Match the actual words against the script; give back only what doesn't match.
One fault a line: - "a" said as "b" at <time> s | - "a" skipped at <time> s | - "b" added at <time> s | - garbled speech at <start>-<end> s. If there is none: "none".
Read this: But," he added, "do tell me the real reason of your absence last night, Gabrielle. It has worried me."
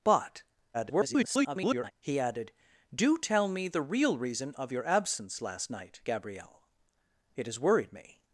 - garbled speech at 0.7-1.9 s